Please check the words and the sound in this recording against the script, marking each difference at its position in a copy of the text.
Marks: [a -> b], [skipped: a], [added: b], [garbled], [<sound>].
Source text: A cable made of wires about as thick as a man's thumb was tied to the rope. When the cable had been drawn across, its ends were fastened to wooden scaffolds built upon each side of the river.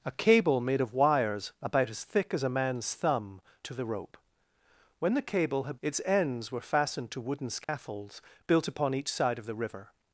A cable made of wires about as thick as a man's thumb [skipped: was tied] to the rope. When the cable had [skipped: been drawn across,] its ends were fastened to wooden scaffolds [dropout] built upon each side of the river.